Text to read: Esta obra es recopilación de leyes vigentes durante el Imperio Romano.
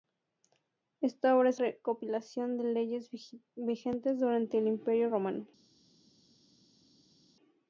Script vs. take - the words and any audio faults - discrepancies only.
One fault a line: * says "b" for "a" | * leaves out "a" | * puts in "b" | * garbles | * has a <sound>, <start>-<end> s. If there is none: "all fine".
all fine